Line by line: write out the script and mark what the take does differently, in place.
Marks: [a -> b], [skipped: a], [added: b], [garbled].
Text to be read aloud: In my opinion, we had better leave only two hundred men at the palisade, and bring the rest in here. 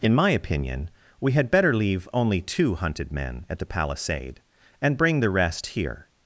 In my opinion, we had better leave only two [hundred -> hunted] men at the palisade, and bring the rest [skipped: in] here.